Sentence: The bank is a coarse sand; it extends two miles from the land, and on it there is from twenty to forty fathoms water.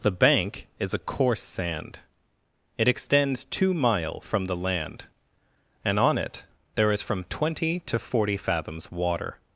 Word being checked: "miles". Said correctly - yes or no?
no